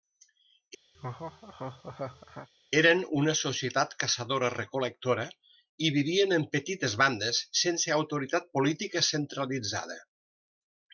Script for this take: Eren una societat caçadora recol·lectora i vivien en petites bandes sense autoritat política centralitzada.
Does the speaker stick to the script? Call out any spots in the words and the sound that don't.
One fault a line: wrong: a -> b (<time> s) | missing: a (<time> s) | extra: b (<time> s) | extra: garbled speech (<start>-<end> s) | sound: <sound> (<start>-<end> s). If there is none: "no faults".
sound: laugh (0.9-2.5 s)